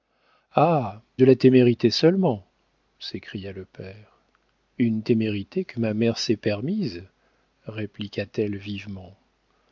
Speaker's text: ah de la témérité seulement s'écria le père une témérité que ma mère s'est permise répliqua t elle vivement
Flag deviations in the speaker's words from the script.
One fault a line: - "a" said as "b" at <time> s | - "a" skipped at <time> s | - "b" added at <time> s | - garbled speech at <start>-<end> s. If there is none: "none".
none